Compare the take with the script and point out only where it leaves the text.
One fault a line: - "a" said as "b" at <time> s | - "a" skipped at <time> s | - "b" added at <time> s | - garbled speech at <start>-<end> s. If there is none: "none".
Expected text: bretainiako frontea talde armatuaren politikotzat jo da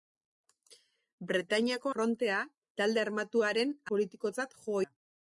none